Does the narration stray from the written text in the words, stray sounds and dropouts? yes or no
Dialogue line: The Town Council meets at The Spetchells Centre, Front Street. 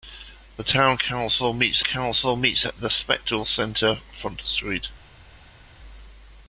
yes